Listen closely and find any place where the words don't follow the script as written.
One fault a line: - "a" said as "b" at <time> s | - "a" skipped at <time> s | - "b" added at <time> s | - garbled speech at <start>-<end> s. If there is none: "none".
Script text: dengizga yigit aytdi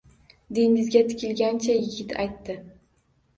- "tikilgancha" added at 1.1 s